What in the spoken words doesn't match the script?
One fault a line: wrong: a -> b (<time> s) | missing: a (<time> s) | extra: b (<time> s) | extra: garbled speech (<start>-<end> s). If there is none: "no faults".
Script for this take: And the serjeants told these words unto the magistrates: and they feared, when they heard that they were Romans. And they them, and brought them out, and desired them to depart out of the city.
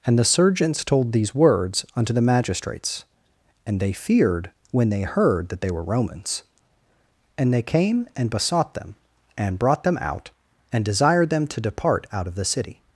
extra: came and besought (7.6 s)